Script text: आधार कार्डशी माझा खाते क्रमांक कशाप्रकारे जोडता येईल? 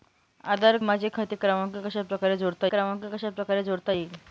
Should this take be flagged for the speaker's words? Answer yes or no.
yes